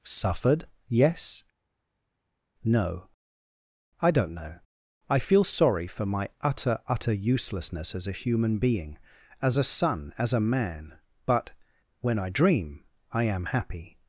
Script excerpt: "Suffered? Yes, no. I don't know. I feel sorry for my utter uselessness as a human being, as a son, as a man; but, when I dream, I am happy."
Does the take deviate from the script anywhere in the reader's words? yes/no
yes